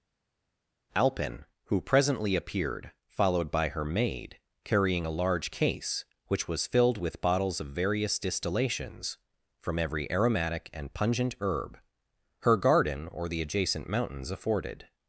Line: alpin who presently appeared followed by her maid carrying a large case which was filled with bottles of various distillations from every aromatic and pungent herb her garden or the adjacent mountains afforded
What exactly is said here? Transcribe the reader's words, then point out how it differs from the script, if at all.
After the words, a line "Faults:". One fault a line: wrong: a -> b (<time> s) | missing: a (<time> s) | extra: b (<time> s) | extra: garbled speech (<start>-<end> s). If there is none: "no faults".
alpin who presently appeared followed by her maid carrying a large case which was filled with bottles of various distillations from every aromatic and pungent herb her garden or the adjacent mountains afforded
Faults:
no faults